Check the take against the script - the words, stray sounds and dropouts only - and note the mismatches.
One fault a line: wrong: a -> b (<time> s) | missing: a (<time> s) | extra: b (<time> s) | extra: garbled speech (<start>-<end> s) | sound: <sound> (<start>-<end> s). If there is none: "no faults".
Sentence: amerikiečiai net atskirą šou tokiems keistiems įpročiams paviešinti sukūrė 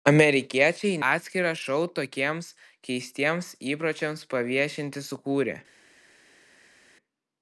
missing: net (1.0 s)